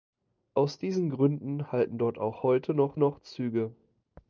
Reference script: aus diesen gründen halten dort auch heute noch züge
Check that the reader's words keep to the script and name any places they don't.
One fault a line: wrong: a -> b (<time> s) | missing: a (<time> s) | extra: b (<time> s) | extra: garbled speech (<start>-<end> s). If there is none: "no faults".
extra: noch (3.0 s)